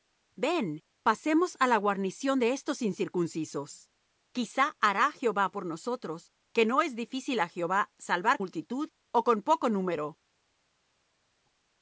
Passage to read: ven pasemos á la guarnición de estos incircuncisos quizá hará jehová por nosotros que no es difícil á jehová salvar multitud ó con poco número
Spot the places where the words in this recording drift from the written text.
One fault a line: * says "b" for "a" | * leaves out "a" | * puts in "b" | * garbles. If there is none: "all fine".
all fine